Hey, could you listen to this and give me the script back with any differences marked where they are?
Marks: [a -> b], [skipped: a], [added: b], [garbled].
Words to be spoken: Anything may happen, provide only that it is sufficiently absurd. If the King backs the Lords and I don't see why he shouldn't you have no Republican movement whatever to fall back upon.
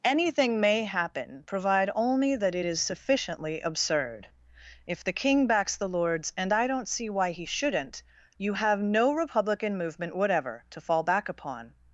Anything may happen, provide only that it is sufficiently absurd. If the King backs the Lords and I don't see why he shouldn't you have no Republican movement whatever to fall back upon.